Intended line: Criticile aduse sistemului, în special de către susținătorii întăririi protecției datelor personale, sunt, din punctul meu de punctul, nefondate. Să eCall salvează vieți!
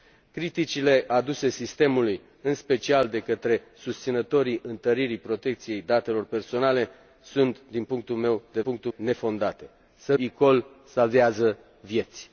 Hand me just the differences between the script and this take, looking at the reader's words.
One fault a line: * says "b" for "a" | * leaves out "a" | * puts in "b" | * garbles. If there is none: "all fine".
all fine